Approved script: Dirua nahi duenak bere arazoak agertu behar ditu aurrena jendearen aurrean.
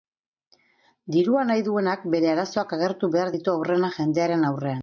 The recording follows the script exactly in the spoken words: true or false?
true